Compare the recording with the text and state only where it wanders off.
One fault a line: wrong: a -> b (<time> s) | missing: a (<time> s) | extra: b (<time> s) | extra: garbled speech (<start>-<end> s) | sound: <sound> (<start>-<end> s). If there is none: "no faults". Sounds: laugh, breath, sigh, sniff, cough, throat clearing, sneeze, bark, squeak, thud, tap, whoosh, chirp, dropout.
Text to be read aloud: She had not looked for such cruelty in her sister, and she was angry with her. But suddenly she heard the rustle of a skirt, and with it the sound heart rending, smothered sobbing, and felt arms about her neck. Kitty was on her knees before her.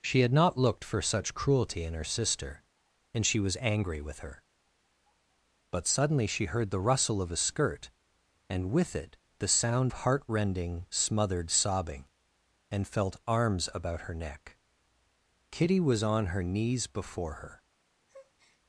sound: breath (18.1-18.6 s)